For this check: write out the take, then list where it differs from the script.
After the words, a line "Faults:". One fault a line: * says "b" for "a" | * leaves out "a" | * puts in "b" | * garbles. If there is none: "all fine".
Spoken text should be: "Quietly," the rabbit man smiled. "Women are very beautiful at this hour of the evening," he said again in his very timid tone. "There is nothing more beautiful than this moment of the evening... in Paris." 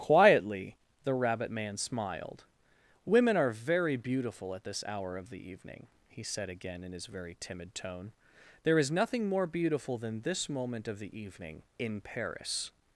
"Quietly," the rabbit man smiled. "Women are very beautiful at this hour of the evening," he said again in his very timid tone. "There is nothing more beautiful than this moment of the evening... in Paris."
Faults:
all fine